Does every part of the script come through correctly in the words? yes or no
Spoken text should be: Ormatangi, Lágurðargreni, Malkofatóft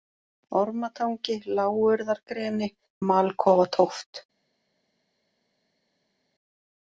yes